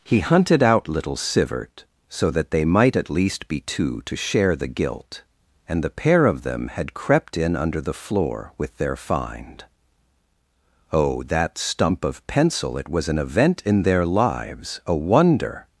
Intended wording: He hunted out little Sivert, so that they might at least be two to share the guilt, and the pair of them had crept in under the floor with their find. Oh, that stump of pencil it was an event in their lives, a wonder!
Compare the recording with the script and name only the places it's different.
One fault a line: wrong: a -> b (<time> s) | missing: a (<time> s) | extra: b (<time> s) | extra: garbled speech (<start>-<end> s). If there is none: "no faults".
no faults